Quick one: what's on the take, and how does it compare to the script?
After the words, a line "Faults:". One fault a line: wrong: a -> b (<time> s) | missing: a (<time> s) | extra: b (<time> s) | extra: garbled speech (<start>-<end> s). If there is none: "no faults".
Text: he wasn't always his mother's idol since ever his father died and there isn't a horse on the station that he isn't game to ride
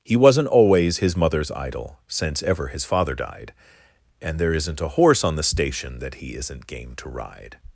he wasn't always his mother's idol since ever his father died and there isn't a horse on the station that he isn't game to ride
Faults:
no faults